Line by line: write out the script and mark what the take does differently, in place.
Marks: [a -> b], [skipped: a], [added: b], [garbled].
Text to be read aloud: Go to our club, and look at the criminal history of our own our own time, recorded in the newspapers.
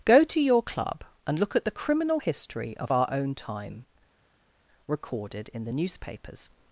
Go to [our -> your] club, and look at the criminal history of our own [skipped: our own] time, recorded in the newspapers.